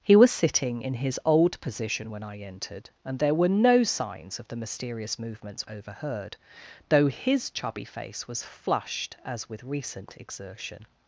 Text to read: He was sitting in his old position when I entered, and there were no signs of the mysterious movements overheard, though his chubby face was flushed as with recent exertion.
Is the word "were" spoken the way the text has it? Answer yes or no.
yes